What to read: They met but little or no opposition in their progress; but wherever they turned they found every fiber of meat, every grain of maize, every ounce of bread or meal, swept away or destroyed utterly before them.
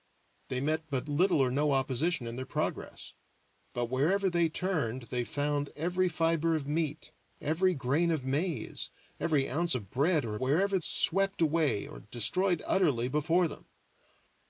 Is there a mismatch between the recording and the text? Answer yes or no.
yes